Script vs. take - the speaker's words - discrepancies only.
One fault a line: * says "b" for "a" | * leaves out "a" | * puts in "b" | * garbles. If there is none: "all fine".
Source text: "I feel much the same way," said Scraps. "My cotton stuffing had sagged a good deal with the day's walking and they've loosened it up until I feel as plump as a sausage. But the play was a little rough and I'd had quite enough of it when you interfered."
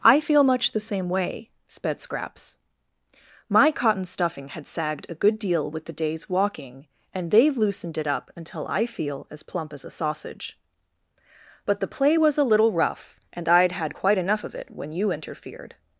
* says "sped" for "said"